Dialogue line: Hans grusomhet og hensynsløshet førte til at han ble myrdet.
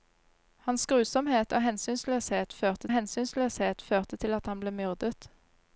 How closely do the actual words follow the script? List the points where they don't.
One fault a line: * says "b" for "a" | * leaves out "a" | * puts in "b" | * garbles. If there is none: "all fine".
* puts in "hensynsløshet førte"